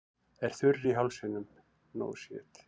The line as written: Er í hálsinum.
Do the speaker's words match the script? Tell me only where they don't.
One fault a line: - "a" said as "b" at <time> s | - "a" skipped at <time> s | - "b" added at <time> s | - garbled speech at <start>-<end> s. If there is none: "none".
- "þurr" added at 0.6 s